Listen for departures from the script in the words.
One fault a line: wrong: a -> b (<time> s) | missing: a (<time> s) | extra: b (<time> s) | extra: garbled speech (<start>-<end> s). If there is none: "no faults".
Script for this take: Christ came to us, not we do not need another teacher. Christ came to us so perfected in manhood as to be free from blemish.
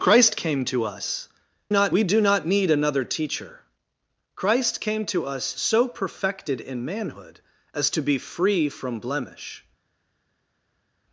no faults